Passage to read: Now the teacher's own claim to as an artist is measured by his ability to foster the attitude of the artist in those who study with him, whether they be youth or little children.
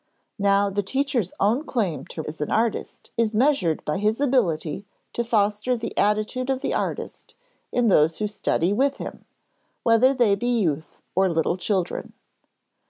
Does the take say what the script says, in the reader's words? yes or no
yes